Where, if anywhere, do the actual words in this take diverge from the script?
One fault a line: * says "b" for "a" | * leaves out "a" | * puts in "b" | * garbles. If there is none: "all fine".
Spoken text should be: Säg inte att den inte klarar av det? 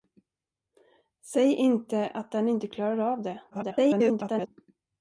* garbles